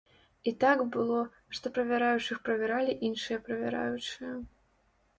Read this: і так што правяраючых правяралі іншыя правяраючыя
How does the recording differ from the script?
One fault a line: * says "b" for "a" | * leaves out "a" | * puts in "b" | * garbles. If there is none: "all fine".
* puts in "было"